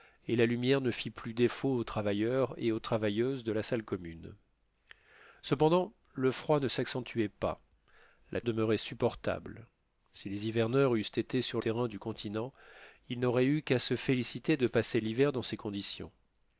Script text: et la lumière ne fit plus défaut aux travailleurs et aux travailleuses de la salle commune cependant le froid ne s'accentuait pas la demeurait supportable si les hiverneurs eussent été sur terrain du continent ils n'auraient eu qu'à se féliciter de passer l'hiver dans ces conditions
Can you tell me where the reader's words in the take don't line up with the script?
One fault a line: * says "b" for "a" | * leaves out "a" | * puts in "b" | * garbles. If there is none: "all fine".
all fine